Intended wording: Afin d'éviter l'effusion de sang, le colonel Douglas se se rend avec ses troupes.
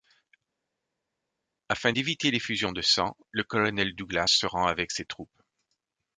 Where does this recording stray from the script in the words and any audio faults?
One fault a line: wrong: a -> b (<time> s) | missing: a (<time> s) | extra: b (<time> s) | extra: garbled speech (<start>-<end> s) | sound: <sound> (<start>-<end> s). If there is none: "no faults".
missing: se (4.5 s)